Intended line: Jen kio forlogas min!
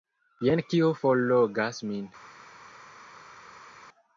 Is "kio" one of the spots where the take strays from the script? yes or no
no